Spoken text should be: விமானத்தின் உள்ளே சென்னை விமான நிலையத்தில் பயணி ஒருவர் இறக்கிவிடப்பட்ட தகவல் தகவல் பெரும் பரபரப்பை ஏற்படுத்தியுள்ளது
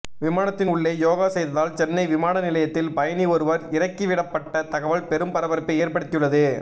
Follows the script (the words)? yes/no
no